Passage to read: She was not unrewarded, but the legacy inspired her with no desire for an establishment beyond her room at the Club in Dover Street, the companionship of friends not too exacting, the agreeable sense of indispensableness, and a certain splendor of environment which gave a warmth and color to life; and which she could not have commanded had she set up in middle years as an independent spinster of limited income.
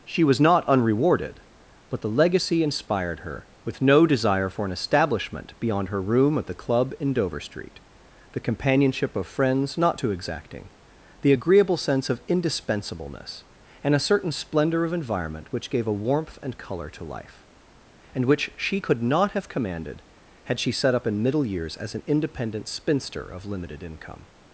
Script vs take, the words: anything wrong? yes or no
no